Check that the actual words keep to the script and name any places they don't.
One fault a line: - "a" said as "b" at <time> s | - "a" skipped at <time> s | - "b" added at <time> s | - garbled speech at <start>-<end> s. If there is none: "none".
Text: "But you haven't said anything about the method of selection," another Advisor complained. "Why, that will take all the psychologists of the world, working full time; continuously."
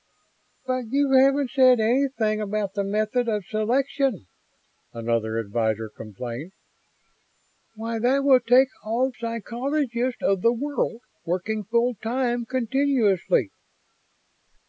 - "the" skipped at 9.1 s